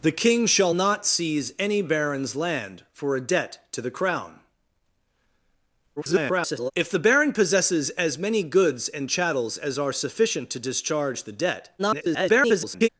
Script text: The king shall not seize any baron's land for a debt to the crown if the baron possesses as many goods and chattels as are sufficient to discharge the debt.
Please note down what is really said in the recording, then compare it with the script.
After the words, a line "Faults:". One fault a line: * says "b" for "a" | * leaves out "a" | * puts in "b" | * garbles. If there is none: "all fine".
The king shall not seize any baron's land for a debt to the crown [garbled] if the baron possesses as many goods and chattels as are sufficient to discharge the debt. [garbled]
Faults:
* garbles
* garbles